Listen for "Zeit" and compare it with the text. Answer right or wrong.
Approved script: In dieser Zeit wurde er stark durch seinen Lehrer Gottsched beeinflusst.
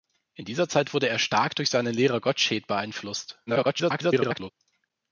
right